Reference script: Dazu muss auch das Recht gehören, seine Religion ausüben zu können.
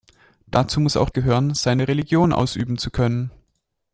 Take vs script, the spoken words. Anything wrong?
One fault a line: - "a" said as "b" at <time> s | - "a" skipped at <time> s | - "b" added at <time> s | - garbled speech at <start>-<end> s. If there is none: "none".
- "das Recht" skipped at 1.1 s